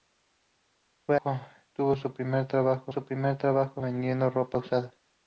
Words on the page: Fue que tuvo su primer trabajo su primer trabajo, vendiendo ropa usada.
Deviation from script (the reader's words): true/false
false